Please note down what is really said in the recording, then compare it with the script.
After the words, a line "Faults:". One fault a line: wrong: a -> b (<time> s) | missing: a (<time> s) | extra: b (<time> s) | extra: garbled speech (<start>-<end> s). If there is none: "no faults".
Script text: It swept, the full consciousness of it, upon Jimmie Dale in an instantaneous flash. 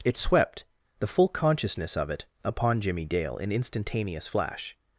It swept, the full consciousness of it, upon Jimmie Dale in instantaneous flash.
Faults:
missing: an (3.5 s)